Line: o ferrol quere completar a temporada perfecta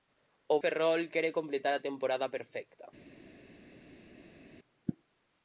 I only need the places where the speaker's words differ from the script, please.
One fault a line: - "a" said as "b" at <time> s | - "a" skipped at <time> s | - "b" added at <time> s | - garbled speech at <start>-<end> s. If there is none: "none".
none